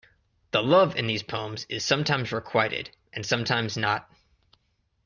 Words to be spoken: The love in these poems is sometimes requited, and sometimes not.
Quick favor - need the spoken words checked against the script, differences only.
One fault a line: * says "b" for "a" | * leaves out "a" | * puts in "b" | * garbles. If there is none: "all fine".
all fine